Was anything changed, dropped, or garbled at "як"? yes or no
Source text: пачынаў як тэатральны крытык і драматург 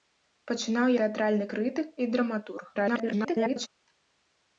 yes